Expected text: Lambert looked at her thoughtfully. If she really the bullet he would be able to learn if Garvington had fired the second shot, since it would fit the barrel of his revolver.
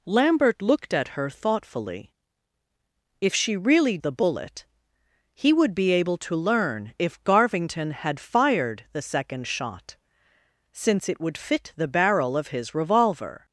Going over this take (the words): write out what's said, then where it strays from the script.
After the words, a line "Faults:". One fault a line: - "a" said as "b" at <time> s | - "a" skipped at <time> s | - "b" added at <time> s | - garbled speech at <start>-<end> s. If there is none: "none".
Lambert looked at her thoughtfully. If she really the bullet he would be able to learn if Garvington had fired the second shot, since it would fit the barrel of his revolver.
Faults:
none